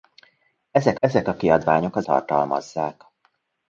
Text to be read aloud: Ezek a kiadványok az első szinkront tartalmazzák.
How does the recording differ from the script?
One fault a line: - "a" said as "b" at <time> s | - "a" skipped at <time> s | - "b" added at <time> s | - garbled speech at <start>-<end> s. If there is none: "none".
- "ezek" added at 1.0 s
- "első szinkront" skipped at 2.1 s